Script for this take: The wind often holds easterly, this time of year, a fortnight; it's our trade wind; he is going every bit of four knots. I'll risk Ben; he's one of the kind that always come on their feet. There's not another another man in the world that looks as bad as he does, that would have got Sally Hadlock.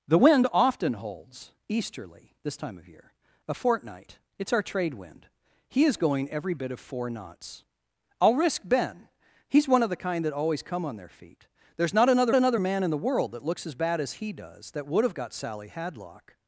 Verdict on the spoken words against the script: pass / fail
pass